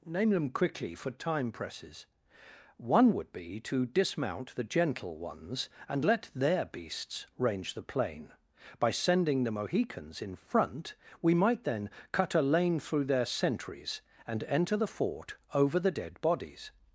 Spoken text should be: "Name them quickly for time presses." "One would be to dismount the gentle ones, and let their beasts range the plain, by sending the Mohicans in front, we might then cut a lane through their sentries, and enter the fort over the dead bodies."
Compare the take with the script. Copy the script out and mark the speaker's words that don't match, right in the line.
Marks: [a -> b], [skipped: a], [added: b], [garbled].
"Name them quickly for time presses." "One would be to dismount the gentle ones, and let their beasts range the plain, by sending the Mohicans in front, we might then cut a lane through their sentries, and enter the fort over the dead bodies."